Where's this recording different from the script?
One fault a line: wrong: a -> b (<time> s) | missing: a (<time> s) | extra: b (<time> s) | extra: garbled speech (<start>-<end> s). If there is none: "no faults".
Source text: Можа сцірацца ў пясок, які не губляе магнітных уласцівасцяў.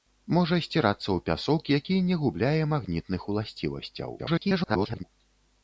extra: garbled speech (4.2-5.0 s)